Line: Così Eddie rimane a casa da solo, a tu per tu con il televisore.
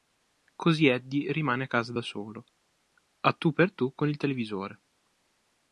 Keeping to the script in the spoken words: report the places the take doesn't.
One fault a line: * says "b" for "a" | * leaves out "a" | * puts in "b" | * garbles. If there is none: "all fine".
all fine